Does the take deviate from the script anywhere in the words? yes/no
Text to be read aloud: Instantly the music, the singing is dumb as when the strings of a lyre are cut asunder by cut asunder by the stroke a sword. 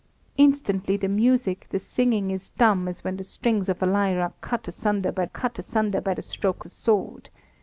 no